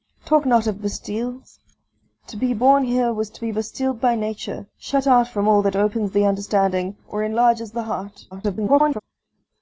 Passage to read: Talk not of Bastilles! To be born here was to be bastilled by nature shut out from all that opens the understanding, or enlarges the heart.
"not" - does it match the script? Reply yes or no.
yes